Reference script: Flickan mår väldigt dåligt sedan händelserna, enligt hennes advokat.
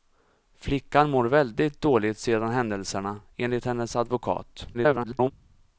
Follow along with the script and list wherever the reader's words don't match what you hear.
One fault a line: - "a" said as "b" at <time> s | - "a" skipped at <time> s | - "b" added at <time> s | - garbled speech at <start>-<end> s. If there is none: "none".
- garbled speech at 4.7-5.3 s